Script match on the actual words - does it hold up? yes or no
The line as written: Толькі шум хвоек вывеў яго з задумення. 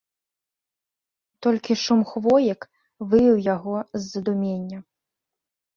yes